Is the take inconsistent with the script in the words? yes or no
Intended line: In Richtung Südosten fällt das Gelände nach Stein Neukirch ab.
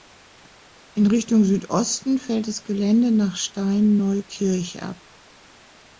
no